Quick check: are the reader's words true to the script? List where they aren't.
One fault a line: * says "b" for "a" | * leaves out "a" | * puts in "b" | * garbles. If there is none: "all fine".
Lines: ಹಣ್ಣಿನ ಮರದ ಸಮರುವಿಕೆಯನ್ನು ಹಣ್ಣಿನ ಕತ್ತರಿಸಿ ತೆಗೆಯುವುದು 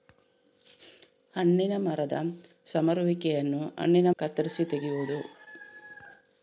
all fine